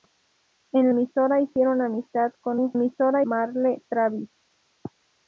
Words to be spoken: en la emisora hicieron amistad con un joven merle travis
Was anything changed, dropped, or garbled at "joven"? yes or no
yes